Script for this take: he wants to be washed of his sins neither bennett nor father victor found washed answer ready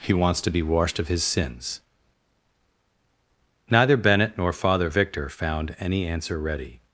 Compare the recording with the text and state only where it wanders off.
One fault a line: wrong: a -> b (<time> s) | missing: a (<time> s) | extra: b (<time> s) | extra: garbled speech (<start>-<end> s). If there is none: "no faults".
wrong: washed -> any (5.8 s)